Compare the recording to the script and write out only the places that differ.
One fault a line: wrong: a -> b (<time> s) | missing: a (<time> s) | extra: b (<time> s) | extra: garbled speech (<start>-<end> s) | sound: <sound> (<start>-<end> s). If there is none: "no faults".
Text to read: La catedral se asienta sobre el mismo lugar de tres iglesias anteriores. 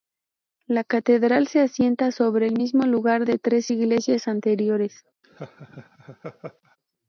sound: laugh (5.2-6.8 s)